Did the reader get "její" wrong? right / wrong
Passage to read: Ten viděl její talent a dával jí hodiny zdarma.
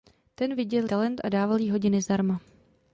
wrong